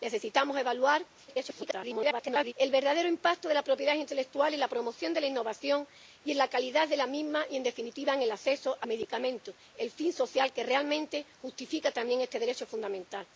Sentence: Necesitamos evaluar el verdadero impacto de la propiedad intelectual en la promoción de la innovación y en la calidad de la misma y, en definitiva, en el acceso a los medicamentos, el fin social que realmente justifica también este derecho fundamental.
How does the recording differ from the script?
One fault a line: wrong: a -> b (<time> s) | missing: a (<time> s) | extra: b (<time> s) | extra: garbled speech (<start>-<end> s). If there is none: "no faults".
extra: garbled speech (1.3-2.5 s)
missing: los (8.9 s)